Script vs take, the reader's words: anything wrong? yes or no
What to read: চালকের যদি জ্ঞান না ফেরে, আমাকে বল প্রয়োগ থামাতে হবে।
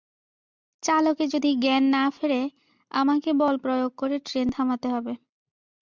yes